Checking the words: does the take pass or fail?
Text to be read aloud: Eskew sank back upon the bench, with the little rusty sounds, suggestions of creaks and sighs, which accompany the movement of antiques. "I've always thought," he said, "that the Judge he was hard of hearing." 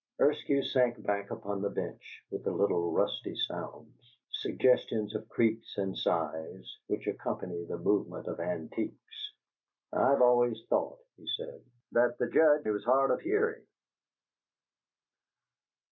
pass